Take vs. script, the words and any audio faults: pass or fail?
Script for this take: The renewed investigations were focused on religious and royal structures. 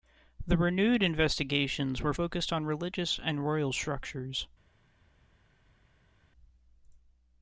pass